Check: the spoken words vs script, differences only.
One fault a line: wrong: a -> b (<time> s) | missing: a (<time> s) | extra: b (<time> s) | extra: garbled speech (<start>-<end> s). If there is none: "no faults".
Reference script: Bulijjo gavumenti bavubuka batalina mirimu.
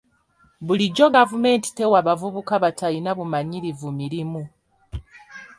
extra: tewa (1.8 s)
extra: bumanyirivu (3.2 s)